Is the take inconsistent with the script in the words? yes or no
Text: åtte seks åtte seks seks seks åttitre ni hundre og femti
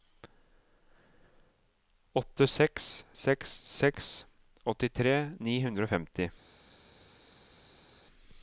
yes